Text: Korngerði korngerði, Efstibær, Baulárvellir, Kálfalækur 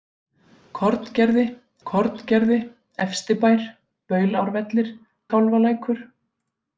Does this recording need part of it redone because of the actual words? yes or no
no